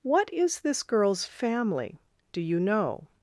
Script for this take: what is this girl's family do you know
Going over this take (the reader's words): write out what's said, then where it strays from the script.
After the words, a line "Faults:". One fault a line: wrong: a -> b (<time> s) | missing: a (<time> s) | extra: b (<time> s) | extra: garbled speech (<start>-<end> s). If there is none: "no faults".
what is this girl's family do you know
Faults:
no faults